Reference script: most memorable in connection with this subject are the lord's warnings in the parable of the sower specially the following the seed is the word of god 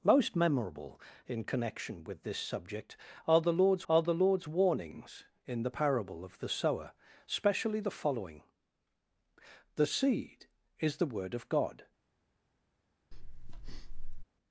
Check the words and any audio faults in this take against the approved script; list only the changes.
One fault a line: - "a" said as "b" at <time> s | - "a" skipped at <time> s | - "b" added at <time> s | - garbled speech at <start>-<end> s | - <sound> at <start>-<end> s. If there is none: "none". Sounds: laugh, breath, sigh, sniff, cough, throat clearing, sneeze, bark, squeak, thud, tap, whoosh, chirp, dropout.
- "are the lord's" added at 3.9 s
- breath at 13.1-14.2 s